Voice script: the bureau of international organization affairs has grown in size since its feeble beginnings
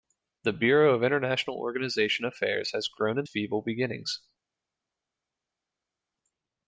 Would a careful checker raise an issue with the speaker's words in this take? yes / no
yes